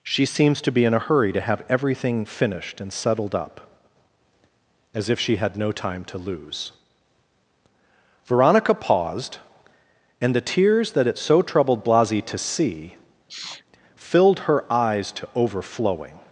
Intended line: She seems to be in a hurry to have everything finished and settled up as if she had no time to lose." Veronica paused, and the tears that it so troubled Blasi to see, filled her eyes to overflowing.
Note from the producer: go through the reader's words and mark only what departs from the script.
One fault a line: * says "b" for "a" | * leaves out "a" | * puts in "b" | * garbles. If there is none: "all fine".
all fine